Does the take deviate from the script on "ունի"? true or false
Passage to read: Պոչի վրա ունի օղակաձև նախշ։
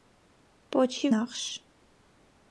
true